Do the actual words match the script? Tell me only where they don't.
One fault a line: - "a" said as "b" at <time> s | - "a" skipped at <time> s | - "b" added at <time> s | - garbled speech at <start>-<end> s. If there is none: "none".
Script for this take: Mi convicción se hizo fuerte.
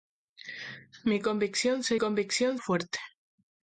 - "hizo" said as "convicción" at 2.0 s